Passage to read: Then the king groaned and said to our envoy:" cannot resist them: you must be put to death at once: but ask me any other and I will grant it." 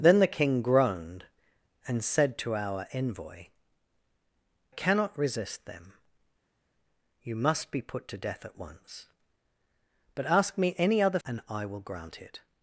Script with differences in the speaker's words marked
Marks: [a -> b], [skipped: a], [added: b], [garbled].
Then the king groaned and said to our envoy:" cannot resist them: you must be put to death at once: but ask me any other and I will grant it."